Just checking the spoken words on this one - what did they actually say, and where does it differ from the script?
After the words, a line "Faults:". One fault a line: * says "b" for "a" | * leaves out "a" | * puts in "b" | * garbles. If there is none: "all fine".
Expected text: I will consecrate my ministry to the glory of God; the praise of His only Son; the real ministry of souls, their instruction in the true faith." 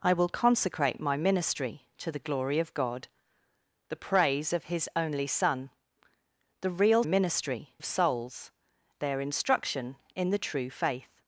I will consecrate my ministry to the glory of God; the praise of His only Son; the real ministry of souls, their instruction in the true faith."
Faults:
all fine